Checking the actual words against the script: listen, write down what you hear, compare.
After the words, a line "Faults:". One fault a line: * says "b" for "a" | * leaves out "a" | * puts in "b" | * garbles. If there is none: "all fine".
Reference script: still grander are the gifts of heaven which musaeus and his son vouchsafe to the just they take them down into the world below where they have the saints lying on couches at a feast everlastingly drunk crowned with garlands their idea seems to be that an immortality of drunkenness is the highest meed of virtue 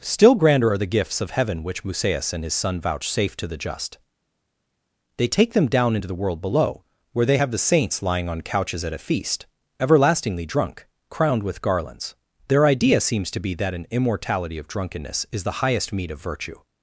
still grander are the gifts of heaven which musaeus and his son vouchsafe to the just they take them down into the world below where they have the saints lying on couches at a feast everlastingly drunk crowned with garlands their idea seems to be that an immortality of drunkenness is the highest meed of virtue
Faults:
all fine